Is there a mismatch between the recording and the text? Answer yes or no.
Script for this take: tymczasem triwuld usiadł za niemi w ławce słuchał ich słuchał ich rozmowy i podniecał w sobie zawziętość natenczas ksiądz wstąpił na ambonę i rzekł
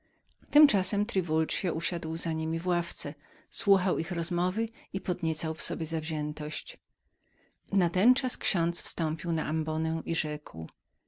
yes